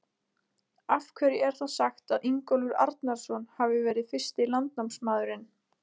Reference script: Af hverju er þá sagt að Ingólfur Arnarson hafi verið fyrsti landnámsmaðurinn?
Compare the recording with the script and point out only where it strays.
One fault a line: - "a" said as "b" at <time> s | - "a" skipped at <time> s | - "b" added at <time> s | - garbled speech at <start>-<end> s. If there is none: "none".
none